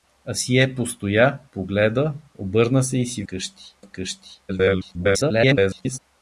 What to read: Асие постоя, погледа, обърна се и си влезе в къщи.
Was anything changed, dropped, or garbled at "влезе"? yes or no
yes